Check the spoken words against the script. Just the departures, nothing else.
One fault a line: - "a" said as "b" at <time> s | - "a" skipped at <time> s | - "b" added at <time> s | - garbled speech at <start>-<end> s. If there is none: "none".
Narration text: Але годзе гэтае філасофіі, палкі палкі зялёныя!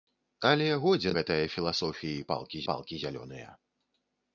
none